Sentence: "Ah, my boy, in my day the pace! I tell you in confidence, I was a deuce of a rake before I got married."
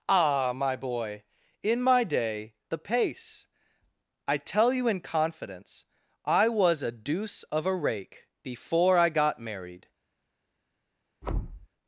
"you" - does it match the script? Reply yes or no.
yes